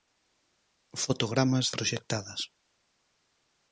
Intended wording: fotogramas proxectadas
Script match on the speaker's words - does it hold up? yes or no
yes